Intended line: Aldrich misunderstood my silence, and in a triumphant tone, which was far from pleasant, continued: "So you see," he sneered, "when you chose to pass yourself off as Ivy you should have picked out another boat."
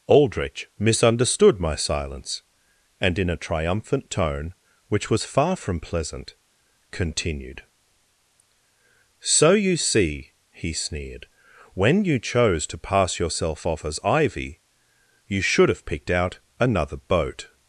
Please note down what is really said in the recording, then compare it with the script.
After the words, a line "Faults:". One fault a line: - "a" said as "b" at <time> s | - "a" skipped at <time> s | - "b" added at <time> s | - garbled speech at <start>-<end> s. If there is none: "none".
Aldrich misunderstood my silence, and in a triumphant tone, which was far from pleasant, continued: "So you see," he sneered, "when you chose to pass yourself off as Ivy you should have picked out another boat."
Faults:
none